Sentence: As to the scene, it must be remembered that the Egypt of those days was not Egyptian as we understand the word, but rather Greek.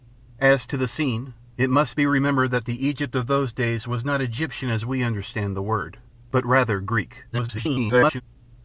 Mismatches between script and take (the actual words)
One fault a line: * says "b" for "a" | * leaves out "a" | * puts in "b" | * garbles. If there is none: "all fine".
* garbles